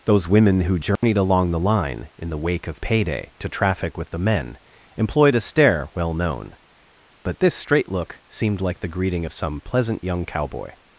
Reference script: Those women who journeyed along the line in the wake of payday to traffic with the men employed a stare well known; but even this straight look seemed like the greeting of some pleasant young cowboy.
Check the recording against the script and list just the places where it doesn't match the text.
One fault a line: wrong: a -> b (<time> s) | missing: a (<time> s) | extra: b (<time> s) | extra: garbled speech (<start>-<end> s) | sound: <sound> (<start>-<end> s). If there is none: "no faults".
sound: dropout (1.0-1.0 s)
missing: even (7.4 s)